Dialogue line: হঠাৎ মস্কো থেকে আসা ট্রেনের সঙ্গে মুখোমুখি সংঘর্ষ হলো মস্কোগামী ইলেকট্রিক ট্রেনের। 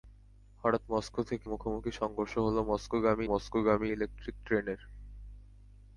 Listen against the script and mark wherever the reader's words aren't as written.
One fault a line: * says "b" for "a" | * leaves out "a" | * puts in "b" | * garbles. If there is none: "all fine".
* leaves out "আসা ট্রেনের সঙ্গে"
* puts in "মস্কোগামী"